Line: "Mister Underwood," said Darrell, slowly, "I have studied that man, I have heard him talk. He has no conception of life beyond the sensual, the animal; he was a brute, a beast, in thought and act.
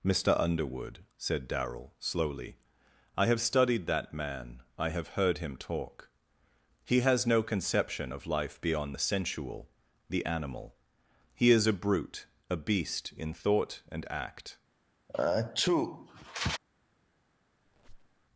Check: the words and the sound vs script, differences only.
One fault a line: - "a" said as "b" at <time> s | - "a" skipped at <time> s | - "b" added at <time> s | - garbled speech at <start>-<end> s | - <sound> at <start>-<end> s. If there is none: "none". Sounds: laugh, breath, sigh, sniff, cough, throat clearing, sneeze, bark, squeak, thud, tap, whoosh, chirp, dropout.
- "was" said as "is" at 11.5 s
- sneeze at 15.1-16.6 s
- squeak at 17.7-18.3 s